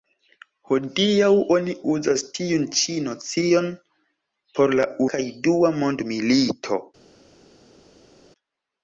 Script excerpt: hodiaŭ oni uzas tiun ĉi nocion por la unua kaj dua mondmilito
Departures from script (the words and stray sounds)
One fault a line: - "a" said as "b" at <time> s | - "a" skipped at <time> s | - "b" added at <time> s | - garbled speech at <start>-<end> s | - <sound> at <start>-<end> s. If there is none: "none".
- "unua" skipped at 4.9 s